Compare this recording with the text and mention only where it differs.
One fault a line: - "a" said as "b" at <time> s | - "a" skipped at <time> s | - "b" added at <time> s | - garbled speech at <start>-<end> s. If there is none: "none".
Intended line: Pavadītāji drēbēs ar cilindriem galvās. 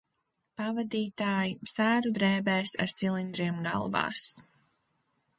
- "sēru" added at 1.7 s